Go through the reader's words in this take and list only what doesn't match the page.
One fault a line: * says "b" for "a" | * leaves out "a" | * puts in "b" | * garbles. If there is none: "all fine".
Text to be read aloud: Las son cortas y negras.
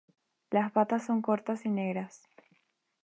* puts in "patas"